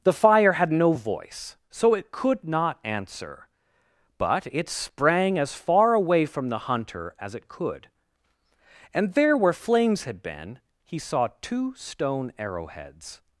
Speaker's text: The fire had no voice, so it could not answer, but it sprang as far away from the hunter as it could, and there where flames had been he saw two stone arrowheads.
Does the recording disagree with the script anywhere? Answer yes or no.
no